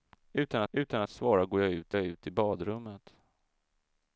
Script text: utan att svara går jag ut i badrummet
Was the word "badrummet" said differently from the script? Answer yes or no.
no